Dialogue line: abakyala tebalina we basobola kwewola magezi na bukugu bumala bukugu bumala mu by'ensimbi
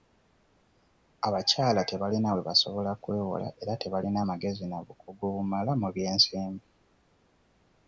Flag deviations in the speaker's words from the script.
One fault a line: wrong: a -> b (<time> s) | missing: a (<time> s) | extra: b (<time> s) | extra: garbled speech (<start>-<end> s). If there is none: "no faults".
extra: era tebalina (3.6 s)
missing: bukugu bumala (5.7 s)